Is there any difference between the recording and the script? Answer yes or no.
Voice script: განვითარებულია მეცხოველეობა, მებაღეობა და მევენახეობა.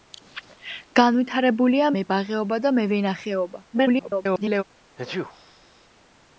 yes